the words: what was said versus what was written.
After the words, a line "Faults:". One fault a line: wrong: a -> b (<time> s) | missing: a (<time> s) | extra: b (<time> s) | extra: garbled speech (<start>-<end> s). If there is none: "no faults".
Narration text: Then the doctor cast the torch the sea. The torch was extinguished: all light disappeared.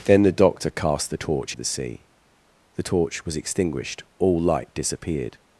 Then the doctor cast the torch the sea. The torch was extinguished: all light disappeared.
Faults:
no faults